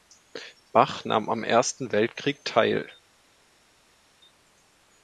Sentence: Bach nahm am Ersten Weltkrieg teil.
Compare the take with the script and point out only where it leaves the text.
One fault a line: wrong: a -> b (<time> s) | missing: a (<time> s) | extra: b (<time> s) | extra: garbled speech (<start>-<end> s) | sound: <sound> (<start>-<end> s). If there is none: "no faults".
no faults